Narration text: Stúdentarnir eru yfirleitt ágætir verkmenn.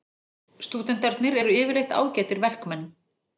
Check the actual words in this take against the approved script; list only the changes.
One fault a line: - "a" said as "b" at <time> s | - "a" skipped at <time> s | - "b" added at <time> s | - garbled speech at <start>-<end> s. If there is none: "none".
none